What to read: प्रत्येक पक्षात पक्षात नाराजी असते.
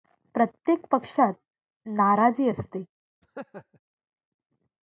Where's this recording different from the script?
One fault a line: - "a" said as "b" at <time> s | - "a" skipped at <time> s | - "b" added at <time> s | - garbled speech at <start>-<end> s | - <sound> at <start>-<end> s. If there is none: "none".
- "पक्षात" skipped at 1.3 s
- laugh at 3.2-3.8 s